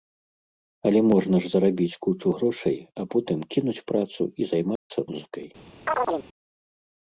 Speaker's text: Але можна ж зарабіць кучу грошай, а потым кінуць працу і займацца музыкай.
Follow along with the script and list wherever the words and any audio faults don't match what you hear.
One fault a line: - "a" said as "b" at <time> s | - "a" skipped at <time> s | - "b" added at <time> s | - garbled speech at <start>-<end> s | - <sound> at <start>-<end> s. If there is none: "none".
- dropout at 4.8-4.9 s
- chirp at 5.9-6.3 s